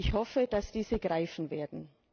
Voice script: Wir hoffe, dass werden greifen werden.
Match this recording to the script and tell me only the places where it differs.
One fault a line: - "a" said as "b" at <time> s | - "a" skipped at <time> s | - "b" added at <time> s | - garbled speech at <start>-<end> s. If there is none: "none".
- "Wir" said as "Ich" at 0.0 s
- "werden" said as "diese" at 0.7 s